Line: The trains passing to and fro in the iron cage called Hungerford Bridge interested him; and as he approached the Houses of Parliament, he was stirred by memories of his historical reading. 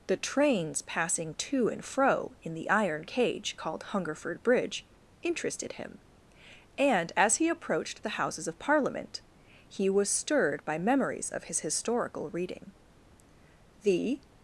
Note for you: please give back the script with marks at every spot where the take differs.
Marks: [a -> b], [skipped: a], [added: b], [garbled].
The trains passing to and fro in the iron cage called Hungerford Bridge interested him; and as he approached the Houses of Parliament, he was stirred by memories of his historical reading. [added: The]